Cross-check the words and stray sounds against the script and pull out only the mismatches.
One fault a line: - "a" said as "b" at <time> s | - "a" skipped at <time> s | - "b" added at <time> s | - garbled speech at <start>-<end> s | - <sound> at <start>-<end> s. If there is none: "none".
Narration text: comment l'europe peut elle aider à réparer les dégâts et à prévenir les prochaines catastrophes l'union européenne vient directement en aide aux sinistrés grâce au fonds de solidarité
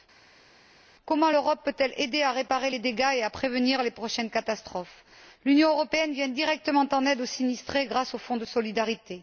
none